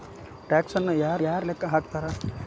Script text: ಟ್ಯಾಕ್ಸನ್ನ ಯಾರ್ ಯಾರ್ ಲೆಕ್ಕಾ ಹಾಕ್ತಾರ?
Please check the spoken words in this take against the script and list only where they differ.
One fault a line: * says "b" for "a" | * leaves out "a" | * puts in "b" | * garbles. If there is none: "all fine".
all fine